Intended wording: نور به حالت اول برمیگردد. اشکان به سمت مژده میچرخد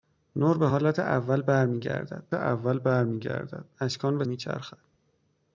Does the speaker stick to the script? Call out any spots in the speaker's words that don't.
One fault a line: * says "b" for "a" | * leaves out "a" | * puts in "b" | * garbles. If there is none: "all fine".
* puts in "اول برمیگردد"
* leaves out "سمت مژده"